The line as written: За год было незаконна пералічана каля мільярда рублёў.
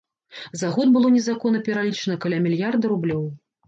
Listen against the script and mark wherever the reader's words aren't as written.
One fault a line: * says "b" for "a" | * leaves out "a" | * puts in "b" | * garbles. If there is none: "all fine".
all fine